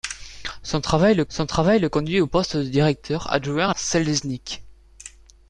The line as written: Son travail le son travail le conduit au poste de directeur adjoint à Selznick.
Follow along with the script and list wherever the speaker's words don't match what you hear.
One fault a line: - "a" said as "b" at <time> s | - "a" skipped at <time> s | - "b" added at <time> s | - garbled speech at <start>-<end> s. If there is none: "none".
none